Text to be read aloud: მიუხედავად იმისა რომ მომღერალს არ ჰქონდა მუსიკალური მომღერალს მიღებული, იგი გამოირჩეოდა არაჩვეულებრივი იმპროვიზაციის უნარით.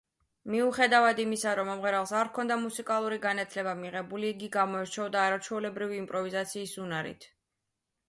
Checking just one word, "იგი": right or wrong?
right